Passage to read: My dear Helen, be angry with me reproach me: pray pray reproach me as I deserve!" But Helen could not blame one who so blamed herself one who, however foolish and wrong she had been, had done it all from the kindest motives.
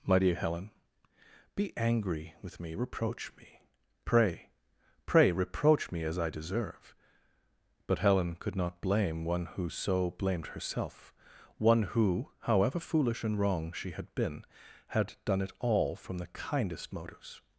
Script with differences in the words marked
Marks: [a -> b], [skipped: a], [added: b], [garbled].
My dear Helen, be angry with me reproach me: pray pray reproach me as I deserve!" But Helen could not blame one who so blamed herself one who, however foolish and wrong she had been, had done it all from the kindest motives.